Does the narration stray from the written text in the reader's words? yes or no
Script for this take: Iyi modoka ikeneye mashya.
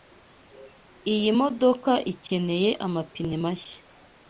yes